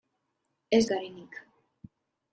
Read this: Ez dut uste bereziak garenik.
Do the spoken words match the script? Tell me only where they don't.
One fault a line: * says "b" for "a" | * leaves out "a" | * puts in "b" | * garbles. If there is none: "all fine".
* leaves out "dut uste bereziak"